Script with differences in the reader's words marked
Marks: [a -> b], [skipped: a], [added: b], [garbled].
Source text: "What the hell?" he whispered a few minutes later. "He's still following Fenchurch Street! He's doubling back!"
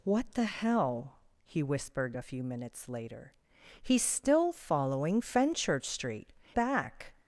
"What the hell?" he whispered a few minutes later. "He's still following Fenchurch Street! [skipped: He's doubling] back!"